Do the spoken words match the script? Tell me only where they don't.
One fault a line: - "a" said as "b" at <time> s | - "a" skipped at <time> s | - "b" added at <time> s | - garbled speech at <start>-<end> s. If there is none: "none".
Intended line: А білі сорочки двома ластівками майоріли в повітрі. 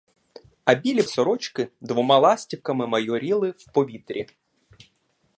none